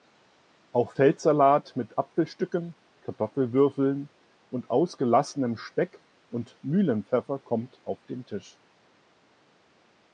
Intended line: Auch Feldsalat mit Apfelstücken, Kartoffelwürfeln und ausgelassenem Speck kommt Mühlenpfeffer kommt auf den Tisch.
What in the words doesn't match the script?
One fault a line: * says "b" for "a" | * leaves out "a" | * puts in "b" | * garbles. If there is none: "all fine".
* says "und" for "kommt"